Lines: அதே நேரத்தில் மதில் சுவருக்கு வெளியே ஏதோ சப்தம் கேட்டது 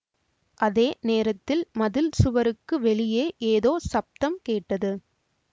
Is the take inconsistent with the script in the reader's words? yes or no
no